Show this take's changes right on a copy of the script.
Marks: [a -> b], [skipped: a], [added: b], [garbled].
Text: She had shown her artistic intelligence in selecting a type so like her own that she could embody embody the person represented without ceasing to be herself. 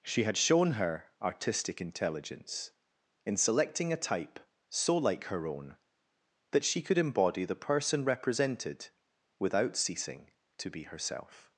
She had shown her artistic intelligence in selecting a type so like her own that she could embody [skipped: embody] the person represented without ceasing to be herself.